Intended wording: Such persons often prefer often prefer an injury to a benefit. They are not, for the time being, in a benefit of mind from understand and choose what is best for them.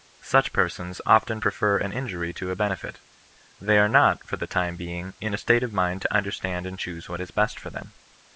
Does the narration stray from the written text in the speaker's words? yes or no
yes